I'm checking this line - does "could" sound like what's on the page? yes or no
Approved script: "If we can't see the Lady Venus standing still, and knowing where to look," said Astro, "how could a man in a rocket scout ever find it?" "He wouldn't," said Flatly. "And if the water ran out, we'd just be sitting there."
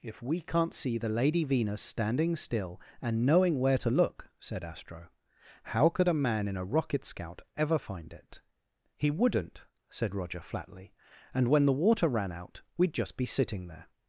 yes